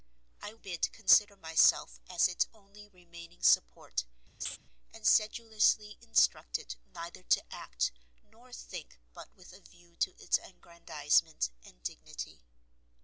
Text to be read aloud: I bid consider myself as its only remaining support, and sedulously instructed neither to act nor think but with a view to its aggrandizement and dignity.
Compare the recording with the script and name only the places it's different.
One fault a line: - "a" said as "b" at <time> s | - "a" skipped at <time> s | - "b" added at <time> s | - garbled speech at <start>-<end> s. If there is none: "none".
none